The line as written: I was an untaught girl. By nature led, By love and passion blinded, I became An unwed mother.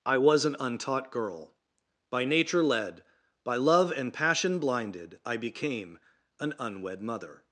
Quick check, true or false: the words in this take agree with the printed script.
true